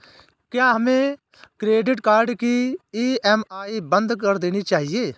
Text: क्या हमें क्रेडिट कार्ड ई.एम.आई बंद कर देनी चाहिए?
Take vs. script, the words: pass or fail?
fail